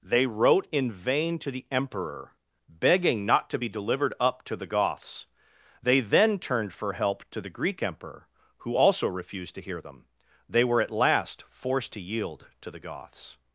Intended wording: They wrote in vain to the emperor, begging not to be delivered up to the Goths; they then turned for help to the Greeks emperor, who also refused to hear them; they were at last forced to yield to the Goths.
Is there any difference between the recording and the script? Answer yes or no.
yes